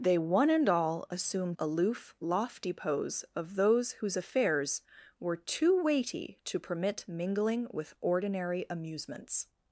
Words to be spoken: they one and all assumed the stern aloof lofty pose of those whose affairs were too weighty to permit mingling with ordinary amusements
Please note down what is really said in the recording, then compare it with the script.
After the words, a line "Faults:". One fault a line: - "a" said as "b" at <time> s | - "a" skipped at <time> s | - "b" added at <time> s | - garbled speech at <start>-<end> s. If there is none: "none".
they one and all assumed aloof lofty pose of those whose affairs were too weighty to permit mingling with ordinary amusements
Faults:
- "the stern" skipped at 1.6 s